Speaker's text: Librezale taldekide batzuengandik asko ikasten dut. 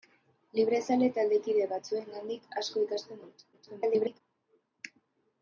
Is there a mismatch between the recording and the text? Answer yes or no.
yes